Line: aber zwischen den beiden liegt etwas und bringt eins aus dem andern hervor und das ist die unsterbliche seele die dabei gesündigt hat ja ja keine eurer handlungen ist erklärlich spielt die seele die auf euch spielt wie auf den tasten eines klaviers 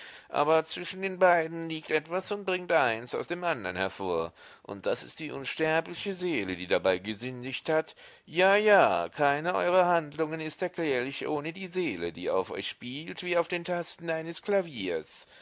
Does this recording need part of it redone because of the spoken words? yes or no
yes